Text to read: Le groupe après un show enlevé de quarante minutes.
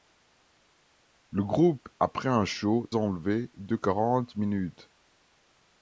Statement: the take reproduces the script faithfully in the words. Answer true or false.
true